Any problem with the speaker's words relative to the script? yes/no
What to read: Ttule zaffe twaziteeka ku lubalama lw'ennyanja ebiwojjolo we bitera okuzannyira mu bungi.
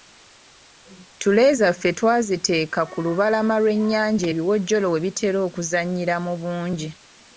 no